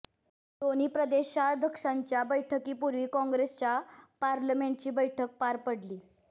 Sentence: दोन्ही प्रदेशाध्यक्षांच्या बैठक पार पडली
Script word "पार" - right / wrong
right